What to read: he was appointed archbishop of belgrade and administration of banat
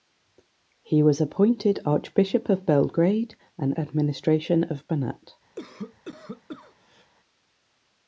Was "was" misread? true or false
false